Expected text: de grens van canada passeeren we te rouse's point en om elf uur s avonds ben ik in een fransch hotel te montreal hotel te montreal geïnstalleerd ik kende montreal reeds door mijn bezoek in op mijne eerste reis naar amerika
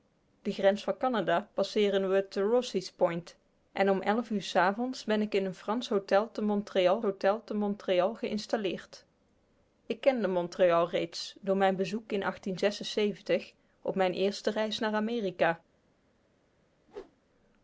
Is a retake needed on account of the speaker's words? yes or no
no